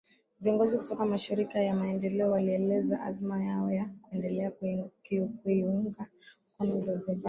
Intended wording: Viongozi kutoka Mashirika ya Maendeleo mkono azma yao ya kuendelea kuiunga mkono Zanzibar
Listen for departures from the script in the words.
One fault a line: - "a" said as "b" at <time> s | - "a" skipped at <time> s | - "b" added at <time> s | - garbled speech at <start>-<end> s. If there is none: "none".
- "mkono" said as "walieleza" at 2.3 s